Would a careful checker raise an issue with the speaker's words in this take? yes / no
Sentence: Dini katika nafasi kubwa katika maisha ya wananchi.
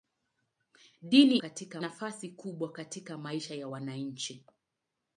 no